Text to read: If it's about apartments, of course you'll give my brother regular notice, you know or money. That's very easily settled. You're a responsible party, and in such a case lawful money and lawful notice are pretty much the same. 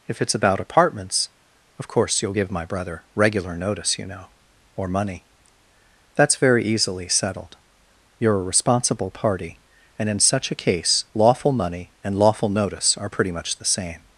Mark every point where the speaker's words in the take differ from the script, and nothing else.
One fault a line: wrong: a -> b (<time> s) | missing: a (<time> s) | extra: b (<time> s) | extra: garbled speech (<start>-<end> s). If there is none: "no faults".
no faults